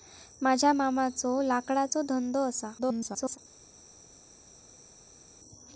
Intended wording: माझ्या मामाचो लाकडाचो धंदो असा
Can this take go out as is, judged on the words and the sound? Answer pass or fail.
fail